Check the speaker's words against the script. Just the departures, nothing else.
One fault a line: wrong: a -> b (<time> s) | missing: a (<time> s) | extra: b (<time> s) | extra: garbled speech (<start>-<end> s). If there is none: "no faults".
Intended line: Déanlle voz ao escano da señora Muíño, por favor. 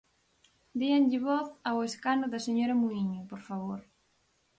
no faults